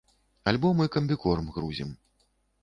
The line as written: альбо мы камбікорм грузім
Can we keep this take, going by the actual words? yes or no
yes